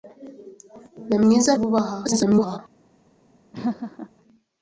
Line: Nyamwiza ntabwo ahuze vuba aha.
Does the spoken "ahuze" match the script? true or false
false